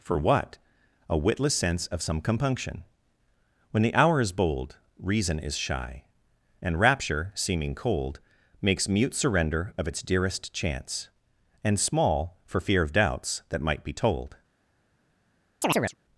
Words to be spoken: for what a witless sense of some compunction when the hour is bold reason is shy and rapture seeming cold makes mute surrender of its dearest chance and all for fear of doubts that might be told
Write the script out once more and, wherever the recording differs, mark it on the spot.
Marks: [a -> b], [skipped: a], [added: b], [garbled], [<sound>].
for what a witless sense of some compunction when the hour is bold reason is shy and rapture seeming cold makes mute surrender of its dearest chance and [all -> small] for fear of doubts that might be told [chirp]